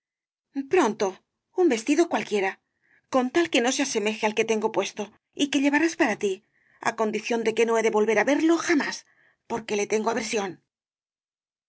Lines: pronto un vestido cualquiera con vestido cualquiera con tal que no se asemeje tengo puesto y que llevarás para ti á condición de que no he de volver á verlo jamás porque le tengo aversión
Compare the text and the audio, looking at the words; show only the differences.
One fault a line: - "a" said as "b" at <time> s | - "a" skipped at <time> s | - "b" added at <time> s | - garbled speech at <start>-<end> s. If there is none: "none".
- "vestido cualquiera con" skipped at 3.2 s
- "al que" added at 4.3 s